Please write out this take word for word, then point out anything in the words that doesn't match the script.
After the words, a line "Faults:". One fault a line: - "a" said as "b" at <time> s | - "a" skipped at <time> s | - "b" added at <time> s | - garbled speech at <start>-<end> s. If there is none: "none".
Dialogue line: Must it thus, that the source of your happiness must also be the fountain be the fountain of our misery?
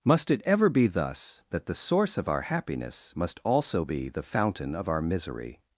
Must it ever be thus, that the source of our happiness must also be the fountain of our misery?
Faults:
- "ever be" added at 0.5 s
- "your" said as "our" at 2.3 s
- "be the fountain" skipped at 4.7 s